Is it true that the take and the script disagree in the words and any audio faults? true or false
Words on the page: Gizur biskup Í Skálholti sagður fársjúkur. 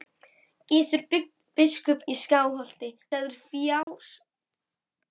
true